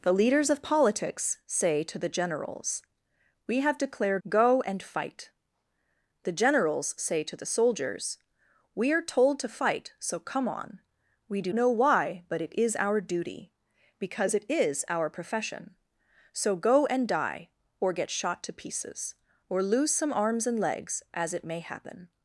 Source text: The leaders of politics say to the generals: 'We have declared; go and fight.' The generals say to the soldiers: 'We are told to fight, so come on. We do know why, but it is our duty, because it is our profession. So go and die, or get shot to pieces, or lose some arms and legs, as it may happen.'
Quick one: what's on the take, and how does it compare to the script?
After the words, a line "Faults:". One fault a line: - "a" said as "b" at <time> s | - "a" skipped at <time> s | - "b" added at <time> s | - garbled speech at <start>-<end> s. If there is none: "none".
The leaders of politics say to the generals: 'We have declared; go and fight.' The generals say to the soldiers: 'We are told to fight, so come on. We do know why, but it is our duty, because it is our profession. So go and die, or get shot to pieces, or lose some arms and legs, as it may happen.'
Faults:
none